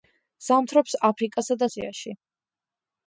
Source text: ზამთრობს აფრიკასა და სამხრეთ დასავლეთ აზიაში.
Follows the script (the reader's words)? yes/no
no